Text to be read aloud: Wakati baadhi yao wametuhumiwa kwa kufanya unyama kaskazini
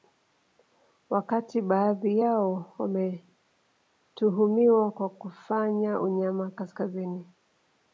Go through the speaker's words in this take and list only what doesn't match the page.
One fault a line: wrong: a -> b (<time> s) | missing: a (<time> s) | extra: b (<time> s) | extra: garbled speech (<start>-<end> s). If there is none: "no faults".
no faults